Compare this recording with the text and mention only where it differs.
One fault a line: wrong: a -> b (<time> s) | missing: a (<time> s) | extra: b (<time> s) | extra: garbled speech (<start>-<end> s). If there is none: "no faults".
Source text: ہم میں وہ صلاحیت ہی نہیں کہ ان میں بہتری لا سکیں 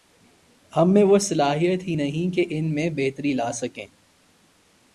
no faults